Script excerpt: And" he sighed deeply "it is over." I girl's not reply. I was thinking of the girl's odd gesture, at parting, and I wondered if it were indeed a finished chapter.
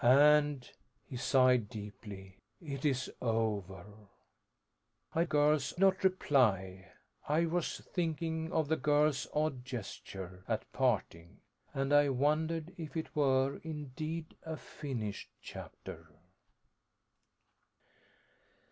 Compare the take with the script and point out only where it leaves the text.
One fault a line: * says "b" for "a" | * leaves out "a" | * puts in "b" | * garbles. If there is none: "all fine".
all fine